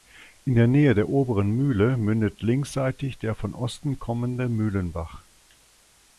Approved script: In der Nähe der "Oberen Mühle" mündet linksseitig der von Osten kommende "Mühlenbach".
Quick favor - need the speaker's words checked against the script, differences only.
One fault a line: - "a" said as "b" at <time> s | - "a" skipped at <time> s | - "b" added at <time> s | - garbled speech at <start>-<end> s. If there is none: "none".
none